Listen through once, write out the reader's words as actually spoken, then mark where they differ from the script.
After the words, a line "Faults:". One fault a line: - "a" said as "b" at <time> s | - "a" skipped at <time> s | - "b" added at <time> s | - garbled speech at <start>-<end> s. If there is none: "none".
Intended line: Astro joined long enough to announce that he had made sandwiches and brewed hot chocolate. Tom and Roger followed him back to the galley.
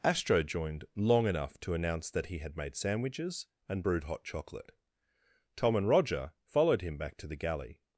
Astro joined long enough to announce that he had made sandwiches and brewed hot chocolate. Tom and Roger followed him back to the galley.
Faults:
none